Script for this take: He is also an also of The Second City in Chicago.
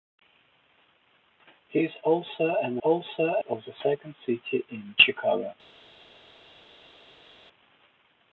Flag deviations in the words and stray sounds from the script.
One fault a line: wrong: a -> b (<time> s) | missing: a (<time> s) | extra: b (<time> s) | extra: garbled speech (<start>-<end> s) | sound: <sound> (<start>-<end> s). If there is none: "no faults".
no faults